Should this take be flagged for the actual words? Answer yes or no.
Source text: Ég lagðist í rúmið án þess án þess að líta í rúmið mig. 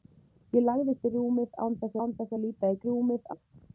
no